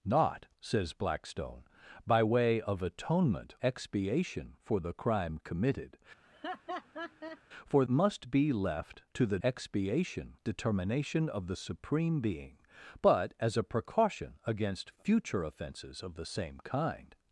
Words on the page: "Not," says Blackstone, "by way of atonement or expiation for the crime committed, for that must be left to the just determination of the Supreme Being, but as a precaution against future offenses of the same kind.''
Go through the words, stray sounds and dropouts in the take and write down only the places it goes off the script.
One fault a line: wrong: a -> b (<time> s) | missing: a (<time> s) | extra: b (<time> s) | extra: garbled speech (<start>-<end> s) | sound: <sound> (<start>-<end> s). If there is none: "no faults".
missing: or (3.5 s)
sound: laugh (6.2-7.4 s)
missing: that (7.8 s)
wrong: just -> expiation (9.4 s)